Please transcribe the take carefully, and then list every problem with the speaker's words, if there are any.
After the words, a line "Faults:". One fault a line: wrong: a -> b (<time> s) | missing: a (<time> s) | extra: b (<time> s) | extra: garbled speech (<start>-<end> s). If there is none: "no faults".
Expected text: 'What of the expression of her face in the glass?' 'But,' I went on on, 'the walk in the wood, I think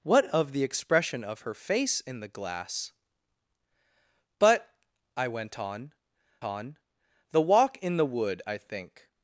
'What of the expression of her face in the glass?' 'But,' I went on on, 'the walk in the wood, I think
Faults:
no faults